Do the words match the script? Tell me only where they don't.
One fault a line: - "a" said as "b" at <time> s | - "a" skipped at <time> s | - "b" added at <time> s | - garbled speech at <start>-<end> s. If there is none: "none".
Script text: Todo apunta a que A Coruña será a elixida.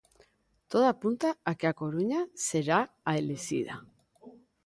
none